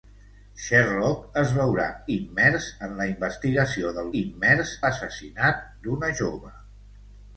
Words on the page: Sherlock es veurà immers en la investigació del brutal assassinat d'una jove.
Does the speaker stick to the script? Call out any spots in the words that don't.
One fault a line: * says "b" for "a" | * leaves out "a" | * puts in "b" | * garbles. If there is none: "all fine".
* says "immers" for "brutal"